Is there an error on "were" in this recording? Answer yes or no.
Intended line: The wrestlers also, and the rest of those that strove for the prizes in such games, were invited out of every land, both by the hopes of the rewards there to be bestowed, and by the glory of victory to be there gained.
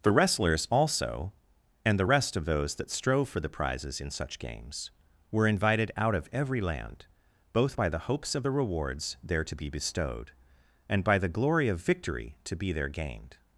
no